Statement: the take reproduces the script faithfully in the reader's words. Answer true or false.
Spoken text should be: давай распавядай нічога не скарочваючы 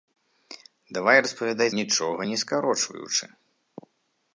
true